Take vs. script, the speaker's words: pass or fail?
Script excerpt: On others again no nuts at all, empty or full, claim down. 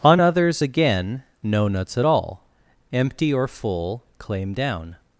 pass